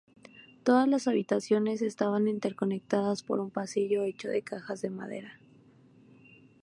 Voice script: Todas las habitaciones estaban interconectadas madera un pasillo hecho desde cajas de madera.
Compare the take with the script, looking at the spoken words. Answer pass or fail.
fail